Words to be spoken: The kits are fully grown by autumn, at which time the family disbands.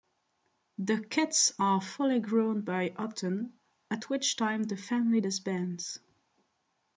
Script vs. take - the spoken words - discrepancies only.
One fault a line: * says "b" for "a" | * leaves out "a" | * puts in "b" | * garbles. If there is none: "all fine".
all fine